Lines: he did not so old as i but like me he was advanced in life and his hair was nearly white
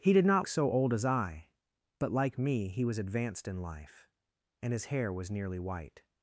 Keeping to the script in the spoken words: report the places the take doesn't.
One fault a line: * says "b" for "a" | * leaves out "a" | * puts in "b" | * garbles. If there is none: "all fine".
all fine